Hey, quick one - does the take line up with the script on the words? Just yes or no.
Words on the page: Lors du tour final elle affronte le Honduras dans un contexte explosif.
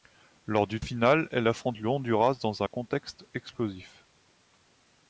no